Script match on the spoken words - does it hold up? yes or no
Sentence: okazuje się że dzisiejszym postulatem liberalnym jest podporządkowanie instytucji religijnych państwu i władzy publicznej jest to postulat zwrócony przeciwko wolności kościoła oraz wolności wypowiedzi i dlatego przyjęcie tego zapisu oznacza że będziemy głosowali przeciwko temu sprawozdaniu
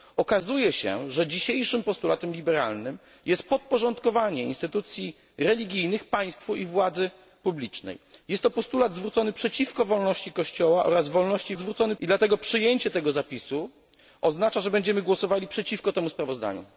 no